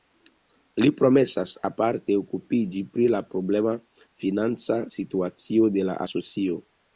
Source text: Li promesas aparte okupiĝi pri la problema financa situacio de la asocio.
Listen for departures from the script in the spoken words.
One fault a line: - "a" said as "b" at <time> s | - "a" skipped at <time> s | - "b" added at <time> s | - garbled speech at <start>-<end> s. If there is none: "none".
none